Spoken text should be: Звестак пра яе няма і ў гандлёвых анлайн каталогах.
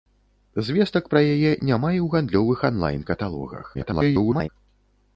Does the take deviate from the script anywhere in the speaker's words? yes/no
yes